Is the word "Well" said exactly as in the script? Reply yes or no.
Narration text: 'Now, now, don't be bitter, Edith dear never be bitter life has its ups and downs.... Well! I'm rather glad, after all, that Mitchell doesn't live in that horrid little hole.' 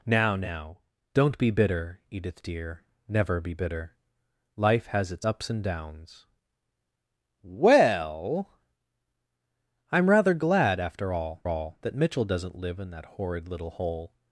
yes